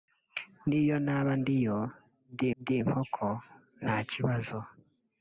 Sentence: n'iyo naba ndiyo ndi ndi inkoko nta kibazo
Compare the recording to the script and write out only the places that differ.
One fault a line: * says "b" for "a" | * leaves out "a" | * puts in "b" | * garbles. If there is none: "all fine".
all fine